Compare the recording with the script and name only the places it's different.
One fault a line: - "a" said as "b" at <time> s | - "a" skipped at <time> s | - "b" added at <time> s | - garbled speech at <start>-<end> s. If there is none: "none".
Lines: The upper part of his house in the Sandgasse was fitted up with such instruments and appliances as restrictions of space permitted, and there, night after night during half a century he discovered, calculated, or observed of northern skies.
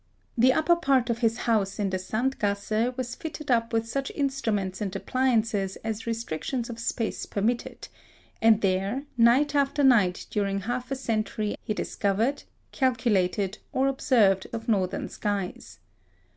none